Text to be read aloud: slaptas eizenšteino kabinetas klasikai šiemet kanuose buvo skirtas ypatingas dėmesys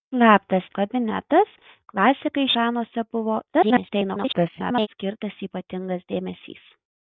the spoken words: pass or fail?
fail